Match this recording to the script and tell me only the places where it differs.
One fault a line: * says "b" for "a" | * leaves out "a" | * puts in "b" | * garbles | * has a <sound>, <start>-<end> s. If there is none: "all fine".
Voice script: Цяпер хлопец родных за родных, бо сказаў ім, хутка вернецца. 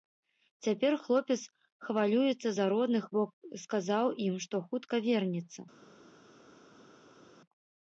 * says "хвалюецца" for "родных"
* puts in "што"